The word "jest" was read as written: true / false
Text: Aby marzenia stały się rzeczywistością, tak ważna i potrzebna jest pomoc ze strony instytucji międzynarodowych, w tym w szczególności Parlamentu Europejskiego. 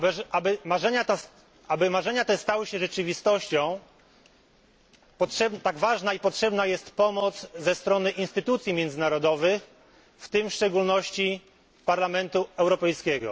true